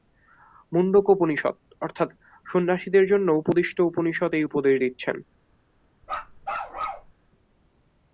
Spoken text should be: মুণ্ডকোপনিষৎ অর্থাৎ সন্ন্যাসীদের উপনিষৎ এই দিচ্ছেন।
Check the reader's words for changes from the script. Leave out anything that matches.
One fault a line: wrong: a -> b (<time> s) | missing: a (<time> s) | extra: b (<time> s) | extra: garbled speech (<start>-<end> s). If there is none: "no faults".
extra: জন্য উপদিষ্ট (3.0 s)
extra: উপদেশ (4.4 s)